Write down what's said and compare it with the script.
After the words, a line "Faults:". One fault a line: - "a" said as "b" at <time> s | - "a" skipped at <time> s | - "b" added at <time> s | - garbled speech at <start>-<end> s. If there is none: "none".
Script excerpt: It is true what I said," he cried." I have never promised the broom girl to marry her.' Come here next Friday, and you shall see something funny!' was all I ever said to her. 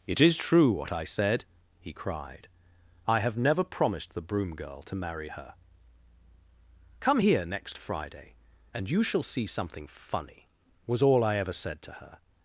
It is true what I said," he cried." I have never promised the broom girl to marry her.' Come here next Friday, and you shall see something funny!' was all I ever said to her.
Faults:
none